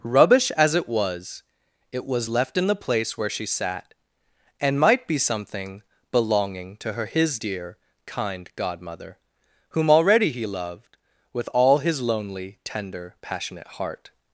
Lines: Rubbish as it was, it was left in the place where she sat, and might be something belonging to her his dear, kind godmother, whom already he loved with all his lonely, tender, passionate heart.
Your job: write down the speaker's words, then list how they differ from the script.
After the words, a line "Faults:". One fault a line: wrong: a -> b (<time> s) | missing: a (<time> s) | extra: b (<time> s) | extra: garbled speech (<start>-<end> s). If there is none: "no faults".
Rubbish as it was, it was left in the place where she sat, and might be something belonging to her his dear, kind godmother, whom already he loved with all his lonely, tender, passionate heart.
Faults:
no faults